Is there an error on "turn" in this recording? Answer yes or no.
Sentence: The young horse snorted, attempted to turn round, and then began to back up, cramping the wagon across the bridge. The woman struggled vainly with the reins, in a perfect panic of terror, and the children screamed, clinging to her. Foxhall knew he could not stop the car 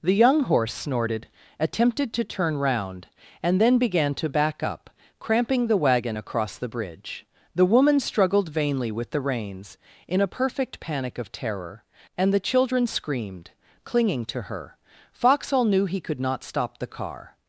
no